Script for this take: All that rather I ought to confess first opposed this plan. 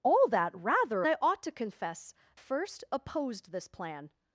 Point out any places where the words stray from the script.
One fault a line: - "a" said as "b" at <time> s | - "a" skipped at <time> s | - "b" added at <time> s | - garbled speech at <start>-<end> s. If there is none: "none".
none